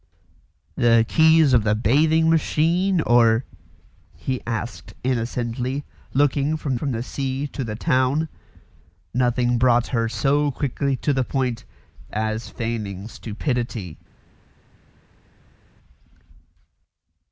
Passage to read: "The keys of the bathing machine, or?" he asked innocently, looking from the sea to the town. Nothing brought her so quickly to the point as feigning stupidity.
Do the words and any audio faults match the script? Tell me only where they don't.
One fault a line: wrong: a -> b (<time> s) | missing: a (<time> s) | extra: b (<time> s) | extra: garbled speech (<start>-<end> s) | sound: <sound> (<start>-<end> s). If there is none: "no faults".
extra: from (6.7 s)